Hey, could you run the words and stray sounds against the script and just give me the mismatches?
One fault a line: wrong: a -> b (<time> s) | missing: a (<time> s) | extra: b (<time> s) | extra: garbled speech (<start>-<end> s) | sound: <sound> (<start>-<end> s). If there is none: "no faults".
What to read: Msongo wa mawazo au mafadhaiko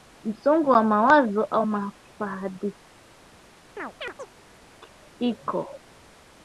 sound: chirp (3.8-4.4 s)